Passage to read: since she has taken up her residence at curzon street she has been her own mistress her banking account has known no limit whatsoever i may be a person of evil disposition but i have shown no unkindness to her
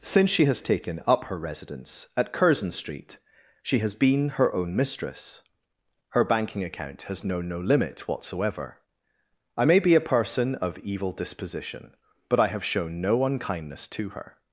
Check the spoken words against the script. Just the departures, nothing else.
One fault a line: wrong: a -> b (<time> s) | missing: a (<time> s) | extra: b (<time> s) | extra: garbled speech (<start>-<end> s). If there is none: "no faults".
no faults